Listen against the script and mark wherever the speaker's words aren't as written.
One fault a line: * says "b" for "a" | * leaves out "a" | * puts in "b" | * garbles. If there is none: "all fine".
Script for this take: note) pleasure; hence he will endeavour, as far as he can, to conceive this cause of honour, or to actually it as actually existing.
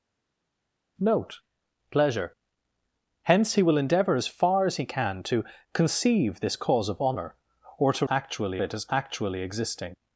all fine